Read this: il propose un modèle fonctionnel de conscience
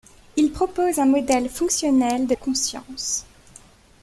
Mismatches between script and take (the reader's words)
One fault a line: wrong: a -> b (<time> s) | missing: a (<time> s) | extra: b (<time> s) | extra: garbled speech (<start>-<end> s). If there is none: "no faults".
no faults